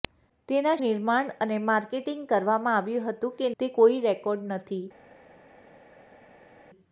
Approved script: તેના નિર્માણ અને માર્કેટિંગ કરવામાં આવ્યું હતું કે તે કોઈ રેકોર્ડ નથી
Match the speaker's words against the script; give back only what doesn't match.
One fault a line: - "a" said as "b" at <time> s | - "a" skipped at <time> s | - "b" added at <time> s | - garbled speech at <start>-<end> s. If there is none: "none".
none